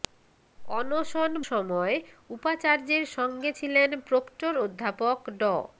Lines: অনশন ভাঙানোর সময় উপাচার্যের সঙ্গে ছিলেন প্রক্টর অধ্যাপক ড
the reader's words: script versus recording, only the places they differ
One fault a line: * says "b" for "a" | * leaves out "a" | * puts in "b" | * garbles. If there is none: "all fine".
* leaves out "ভাঙানোর"